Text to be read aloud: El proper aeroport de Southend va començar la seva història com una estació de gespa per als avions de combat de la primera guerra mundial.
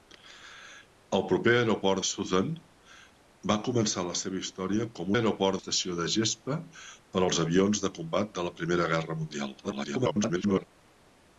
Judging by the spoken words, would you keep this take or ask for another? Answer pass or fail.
fail